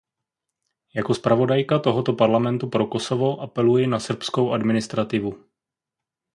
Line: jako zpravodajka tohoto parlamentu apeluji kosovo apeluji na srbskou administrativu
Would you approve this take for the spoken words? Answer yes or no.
no